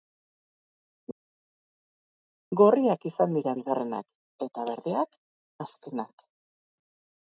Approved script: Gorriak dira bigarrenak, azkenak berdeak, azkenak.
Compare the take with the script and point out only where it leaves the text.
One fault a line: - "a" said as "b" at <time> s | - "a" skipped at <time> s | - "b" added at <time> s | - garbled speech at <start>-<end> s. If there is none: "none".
- "izan" added at 3.1 s
- "azkenak" said as "eta" at 4.5 s